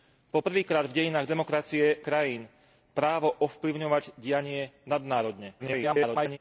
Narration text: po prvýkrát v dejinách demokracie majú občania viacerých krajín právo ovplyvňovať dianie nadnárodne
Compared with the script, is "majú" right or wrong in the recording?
wrong